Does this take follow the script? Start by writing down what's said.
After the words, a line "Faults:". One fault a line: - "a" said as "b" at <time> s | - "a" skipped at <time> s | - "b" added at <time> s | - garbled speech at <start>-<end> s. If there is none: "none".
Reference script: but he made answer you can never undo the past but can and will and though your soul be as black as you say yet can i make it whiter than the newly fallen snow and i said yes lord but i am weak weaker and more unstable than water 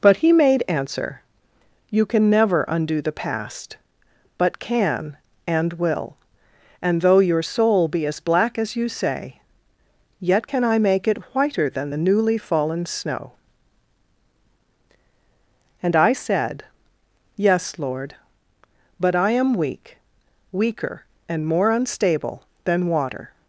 but he made answer you can never undo the past but can and will and though your soul be as black as you say yet can i make it whiter than the newly fallen snow and i said yes lord but i am weak weaker and more unstable than water
Faults:
none